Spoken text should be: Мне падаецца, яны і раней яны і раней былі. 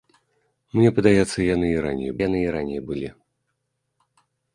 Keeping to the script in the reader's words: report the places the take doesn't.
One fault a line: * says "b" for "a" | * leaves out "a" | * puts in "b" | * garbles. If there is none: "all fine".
all fine